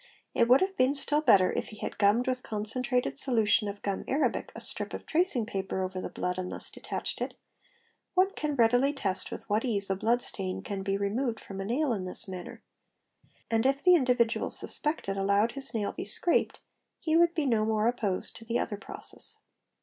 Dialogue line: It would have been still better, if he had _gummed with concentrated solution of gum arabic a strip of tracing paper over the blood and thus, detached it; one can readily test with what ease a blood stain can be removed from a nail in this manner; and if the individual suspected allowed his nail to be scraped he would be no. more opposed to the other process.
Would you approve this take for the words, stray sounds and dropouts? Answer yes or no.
no